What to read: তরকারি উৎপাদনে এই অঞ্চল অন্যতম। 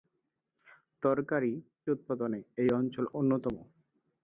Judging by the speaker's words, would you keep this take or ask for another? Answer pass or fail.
pass